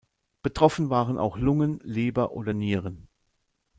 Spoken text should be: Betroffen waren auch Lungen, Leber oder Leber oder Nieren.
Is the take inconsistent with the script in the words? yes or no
yes